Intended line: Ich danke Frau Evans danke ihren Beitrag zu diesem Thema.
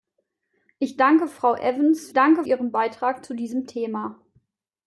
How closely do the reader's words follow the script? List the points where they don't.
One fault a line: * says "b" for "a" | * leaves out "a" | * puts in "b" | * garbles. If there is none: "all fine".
all fine